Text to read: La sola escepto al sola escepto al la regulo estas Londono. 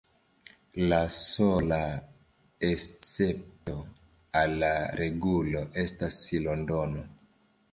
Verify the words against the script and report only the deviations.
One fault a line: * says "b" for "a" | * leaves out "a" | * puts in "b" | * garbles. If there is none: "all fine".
* leaves out "sola escepto al"